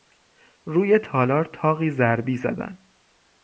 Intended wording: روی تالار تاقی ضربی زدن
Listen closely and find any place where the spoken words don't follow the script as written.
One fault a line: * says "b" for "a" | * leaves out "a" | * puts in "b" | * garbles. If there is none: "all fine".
all fine